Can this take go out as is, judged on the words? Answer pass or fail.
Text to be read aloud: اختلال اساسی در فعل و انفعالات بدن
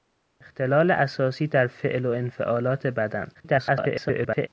fail